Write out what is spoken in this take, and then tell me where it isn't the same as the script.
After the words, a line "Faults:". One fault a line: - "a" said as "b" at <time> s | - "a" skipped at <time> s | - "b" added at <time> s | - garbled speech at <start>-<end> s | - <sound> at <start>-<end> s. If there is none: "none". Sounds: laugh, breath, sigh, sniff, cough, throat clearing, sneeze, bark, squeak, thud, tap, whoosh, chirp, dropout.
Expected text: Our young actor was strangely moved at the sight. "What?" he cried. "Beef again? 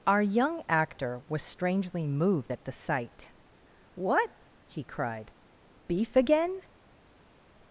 Our young actor was strangely moved at the sight. "What?" he cried. "Beef again?
Faults:
none